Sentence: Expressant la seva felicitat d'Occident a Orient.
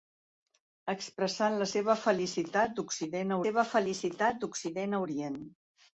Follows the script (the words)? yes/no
no